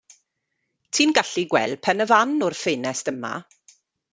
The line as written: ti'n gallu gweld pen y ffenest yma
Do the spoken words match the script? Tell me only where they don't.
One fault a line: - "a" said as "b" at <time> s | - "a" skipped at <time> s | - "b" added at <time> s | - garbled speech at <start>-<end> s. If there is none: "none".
- "fan o'r" added at 2.1 s